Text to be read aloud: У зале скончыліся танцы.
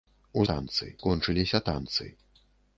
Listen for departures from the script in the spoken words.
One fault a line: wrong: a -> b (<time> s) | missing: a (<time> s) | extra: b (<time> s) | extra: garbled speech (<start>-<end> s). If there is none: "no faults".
wrong: зале -> танцы (0.5 s)